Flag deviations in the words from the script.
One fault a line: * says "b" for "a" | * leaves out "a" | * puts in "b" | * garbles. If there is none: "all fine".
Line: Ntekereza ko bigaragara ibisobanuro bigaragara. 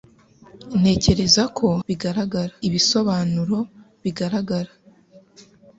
all fine